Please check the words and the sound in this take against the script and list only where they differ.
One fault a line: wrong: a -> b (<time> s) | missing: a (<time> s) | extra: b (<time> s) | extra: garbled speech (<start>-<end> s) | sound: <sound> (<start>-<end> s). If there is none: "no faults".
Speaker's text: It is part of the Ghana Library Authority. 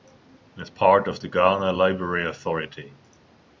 no faults